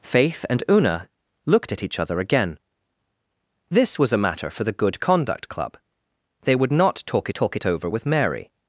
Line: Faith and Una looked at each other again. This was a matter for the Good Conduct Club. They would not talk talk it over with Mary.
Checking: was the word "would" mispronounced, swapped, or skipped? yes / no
no